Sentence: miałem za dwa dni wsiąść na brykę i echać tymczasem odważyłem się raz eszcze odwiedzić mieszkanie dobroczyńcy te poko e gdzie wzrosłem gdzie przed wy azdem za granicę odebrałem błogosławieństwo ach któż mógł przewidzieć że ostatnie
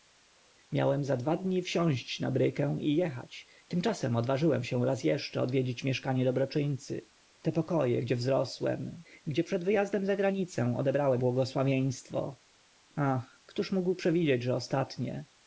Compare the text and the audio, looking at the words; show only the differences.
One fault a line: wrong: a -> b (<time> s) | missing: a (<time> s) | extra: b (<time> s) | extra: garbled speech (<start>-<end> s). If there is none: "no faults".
no faults